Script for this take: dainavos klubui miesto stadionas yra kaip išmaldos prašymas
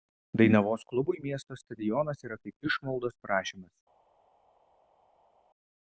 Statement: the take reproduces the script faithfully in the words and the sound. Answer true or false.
true